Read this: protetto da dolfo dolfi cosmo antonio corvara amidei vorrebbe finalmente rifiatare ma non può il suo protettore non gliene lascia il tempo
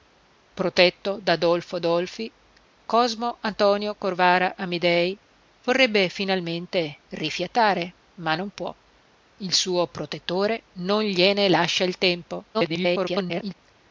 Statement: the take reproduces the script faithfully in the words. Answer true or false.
false